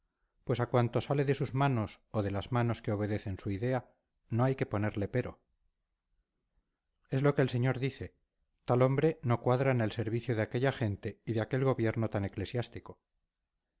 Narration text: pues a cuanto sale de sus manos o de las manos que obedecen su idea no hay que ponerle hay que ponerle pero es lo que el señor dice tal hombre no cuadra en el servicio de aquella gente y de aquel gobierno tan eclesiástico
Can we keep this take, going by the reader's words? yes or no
no